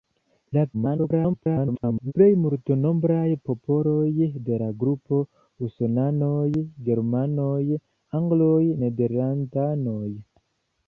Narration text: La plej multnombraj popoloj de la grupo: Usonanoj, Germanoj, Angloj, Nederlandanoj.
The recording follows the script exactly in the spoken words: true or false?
false